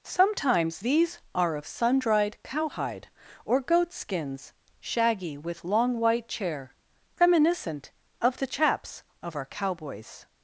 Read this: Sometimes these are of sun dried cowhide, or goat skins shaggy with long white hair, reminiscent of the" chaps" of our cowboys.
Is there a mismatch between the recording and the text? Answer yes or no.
yes